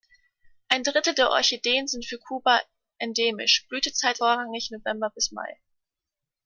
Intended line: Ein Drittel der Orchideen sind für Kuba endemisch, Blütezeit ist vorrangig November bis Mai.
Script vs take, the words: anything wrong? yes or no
yes